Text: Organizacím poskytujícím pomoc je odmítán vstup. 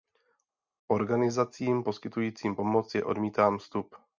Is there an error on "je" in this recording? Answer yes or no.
no